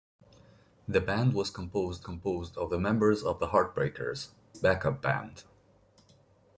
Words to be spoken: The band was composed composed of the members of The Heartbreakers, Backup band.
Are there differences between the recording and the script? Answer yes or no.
no